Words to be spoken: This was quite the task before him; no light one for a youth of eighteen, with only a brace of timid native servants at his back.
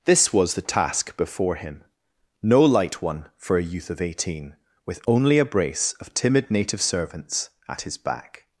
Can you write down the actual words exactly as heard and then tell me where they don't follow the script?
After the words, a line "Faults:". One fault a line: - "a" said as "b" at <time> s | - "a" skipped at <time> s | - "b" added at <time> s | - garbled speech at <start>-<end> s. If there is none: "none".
This was the task before him; no light one for a youth of eighteen, with only a brace of timid native servants at his back.
Faults:
- "quite" skipped at 0.6 s